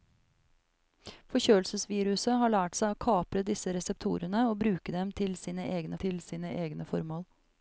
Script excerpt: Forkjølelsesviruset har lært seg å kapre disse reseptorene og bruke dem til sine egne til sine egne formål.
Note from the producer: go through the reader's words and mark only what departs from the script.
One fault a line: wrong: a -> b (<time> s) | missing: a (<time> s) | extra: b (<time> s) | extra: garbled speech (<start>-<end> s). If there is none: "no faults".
no faults